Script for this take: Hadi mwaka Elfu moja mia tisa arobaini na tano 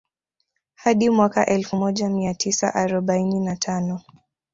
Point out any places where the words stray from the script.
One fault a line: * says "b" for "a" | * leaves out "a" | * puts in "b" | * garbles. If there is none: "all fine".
all fine